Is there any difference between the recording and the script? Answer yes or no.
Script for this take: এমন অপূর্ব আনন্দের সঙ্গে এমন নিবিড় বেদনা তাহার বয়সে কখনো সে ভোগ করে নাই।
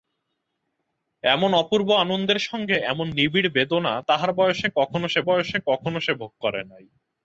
yes